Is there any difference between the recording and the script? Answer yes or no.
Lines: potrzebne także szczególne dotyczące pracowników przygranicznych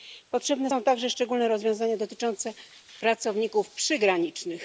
yes